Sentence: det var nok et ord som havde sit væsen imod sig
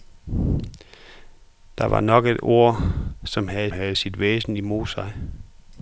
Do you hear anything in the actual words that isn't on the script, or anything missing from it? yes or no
yes